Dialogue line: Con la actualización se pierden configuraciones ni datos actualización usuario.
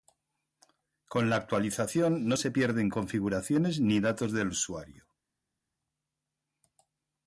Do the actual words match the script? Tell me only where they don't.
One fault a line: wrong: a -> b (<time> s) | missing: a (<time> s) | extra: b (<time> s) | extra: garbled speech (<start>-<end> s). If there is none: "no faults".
extra: no (2.3 s)
wrong: actualización -> del (4.3 s)